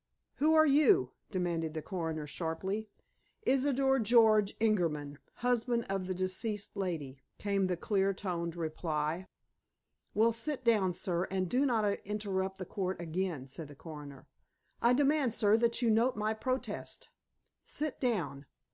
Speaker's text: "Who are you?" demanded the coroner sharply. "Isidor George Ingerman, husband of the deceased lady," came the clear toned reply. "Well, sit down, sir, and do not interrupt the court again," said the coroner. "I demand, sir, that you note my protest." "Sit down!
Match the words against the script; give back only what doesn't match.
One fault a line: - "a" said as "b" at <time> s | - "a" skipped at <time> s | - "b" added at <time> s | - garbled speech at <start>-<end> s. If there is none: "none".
none